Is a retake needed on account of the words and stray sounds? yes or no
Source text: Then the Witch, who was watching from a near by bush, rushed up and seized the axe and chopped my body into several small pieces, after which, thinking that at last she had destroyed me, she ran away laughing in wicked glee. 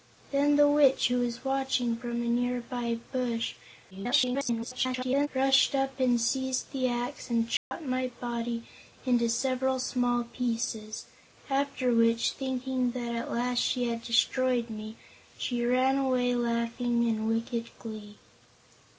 yes